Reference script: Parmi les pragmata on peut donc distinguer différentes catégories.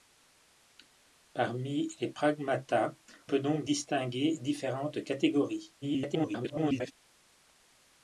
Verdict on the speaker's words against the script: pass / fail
fail